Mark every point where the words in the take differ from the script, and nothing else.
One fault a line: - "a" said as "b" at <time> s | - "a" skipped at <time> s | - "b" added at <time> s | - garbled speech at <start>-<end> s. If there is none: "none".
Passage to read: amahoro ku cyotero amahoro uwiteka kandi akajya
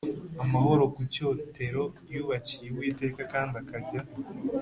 - "amahoro" said as "yubakiye" at 2.1 s